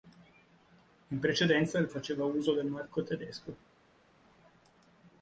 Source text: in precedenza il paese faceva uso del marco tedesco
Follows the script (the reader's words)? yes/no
no